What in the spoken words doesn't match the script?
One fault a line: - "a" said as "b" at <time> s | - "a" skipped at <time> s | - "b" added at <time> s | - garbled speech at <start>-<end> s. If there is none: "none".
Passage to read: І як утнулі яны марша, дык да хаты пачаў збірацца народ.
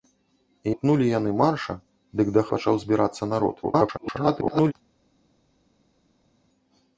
- "як" skipped at 0.7 s
- "хаты" skipped at 2.4 s
- garbled speech at 3.6-4.7 s